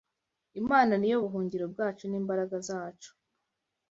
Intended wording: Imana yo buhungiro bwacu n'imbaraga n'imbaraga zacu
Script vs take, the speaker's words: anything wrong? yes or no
yes